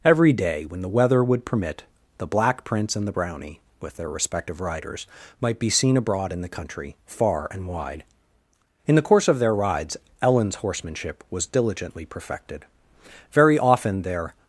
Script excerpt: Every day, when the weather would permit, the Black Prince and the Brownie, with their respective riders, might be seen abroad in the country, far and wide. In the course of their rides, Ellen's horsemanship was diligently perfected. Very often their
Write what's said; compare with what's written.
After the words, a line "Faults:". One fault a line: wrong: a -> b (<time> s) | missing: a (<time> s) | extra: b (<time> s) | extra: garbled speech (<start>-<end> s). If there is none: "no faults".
Every day, when the weather would permit, the Black Prince and the Brownie, with their respective riders, might be seen abroad in the country, far and wide. In the course of their rides, Ellen's horsemanship was diligently perfected. Very often their
Faults:
no faults